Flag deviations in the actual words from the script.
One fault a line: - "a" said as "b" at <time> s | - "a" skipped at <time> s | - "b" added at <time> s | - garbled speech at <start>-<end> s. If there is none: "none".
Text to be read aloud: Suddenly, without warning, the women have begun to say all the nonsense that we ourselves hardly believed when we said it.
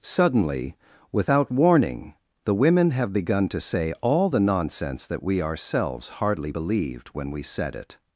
none